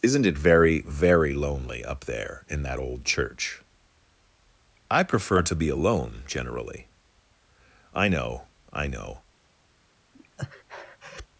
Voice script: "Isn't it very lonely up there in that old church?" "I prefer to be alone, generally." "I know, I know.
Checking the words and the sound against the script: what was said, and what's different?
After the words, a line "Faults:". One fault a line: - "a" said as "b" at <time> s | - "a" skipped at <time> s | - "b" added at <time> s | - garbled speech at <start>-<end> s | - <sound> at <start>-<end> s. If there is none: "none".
"Isn't it very very lonely up there in that old church?" "I prefer to be alone, generally." "I know, I know.
Faults:
- "very" added at 0.8 s
- breath at 10.1-11.3 s